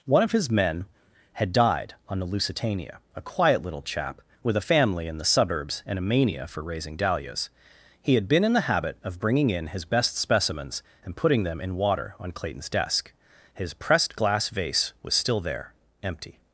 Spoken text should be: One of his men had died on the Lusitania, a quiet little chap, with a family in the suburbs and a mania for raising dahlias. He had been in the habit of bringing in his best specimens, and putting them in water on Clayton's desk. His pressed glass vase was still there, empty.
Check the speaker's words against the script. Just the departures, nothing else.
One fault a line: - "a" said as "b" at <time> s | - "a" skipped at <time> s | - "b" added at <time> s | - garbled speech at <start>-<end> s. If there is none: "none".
none